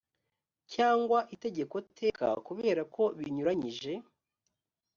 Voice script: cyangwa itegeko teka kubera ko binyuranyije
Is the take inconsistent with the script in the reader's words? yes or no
no